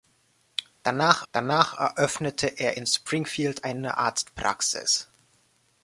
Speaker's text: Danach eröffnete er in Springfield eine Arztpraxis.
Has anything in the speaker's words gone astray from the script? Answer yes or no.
yes